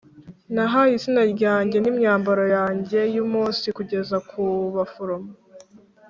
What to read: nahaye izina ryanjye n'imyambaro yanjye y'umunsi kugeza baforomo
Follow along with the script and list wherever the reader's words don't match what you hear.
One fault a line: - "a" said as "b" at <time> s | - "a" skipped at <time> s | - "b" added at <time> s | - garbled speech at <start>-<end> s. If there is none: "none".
- "ku" added at 4.3 s